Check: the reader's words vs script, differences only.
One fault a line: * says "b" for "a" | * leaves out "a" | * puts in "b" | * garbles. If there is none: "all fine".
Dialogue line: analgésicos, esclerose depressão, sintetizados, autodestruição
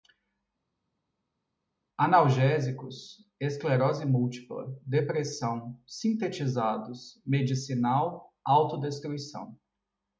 * puts in "múltipla"
* puts in "medicinal"